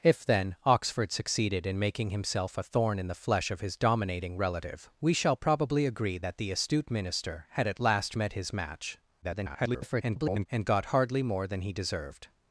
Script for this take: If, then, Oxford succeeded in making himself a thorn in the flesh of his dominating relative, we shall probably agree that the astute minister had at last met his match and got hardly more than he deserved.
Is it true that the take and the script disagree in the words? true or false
true